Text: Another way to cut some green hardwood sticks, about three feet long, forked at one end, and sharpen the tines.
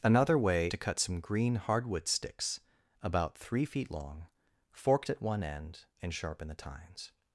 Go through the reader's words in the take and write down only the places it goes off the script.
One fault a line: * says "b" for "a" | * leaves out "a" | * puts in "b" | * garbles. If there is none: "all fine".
all fine